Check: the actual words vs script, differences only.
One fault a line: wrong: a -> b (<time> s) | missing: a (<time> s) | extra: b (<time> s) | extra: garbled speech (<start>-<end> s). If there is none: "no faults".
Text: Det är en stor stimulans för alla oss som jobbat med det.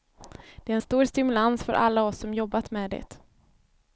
no faults